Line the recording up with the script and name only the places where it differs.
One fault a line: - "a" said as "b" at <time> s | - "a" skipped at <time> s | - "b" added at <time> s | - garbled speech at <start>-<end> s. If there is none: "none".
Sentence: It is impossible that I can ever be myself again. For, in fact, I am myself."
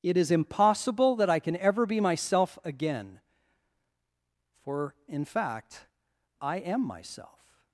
none